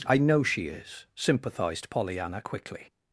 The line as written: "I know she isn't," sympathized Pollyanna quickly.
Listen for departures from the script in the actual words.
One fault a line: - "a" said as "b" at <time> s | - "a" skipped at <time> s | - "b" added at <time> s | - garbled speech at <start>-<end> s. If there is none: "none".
- "isn't" said as "is" at 0.7 s